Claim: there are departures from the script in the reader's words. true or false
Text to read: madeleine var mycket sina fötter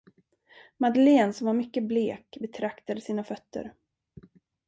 true